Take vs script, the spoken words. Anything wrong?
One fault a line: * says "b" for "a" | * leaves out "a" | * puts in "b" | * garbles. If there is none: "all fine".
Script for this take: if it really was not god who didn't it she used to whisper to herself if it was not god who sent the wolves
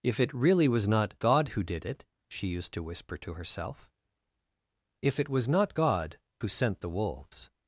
* says "did" for "didn't"